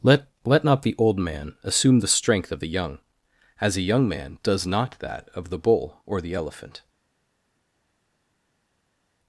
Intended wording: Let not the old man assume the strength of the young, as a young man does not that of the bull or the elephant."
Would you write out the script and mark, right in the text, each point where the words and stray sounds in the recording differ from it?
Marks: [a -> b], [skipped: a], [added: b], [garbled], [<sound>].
Let [added: Let] not the old man assume the strength of the young, as a young man does not that of the bull or the elephant."